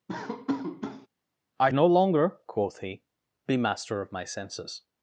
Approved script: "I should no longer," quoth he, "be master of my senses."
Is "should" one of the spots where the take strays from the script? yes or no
yes